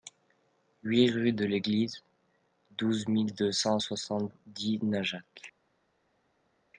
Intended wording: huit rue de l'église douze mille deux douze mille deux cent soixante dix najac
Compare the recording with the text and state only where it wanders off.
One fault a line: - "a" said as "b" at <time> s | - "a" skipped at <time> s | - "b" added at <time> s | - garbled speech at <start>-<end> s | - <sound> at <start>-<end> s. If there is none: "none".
- "douze mille deux" skipped at 3.5 s